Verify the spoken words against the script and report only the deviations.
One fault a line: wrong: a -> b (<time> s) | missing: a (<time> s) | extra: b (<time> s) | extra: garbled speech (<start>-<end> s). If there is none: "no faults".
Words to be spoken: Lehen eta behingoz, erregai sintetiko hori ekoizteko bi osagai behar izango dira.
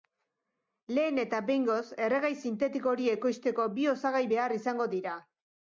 no faults